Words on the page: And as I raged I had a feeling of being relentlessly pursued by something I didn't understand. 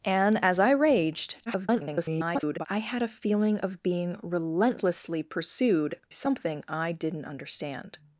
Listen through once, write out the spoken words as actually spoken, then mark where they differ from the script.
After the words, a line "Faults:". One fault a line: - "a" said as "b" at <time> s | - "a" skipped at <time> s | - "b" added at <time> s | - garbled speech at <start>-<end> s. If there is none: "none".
And as I raged [garbled] I had a feeling of being relentlessly pursued something I didn't understand.
Faults:
- garbled speech at 1.5-2.7 s
- "by" skipped at 6.0 s